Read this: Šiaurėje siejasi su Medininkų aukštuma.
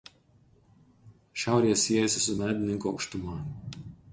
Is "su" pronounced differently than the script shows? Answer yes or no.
no